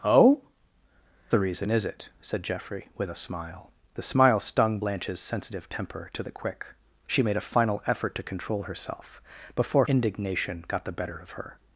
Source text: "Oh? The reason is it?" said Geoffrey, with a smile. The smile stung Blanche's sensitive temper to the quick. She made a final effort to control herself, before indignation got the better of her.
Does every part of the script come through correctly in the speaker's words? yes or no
yes